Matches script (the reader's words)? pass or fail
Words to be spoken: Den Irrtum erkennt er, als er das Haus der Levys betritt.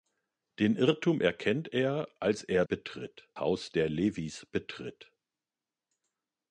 fail